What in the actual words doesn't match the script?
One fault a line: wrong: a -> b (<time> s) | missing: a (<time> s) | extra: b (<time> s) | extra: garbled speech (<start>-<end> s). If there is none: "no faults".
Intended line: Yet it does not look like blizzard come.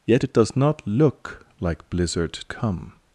no faults